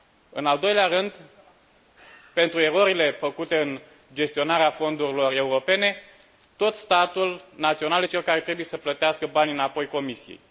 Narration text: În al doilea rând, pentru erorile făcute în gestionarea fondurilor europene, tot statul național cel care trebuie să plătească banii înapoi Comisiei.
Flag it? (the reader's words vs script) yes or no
no